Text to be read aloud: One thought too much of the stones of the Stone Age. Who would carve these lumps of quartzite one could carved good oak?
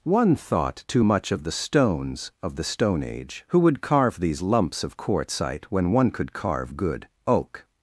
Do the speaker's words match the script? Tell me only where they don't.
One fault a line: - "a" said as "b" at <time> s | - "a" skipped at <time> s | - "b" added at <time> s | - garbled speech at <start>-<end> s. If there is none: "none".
- "when" added at 5.7 s
- "carved" said as "carve" at 6.3 s